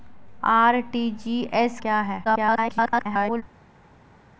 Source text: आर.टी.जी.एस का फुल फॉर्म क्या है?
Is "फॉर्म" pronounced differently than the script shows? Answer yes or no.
yes